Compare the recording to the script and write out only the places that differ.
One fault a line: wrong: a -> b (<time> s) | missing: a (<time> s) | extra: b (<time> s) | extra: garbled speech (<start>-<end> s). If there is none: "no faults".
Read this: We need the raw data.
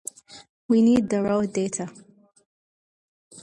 no faults